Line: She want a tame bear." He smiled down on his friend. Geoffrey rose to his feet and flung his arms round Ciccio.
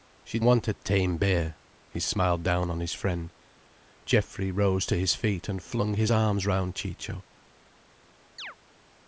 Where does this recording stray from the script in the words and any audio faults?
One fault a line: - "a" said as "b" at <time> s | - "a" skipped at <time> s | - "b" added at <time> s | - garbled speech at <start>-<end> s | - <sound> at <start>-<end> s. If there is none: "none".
- chirp at 8.4-8.6 s